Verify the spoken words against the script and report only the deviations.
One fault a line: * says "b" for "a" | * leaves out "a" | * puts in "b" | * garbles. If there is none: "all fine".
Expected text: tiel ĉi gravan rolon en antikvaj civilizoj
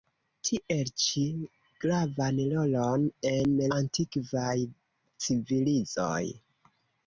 all fine